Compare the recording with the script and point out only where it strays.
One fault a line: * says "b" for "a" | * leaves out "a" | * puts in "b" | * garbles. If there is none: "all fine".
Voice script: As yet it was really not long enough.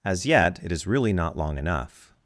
* says "is" for "was"